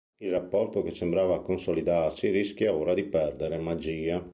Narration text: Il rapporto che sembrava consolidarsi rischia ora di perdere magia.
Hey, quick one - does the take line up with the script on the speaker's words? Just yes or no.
yes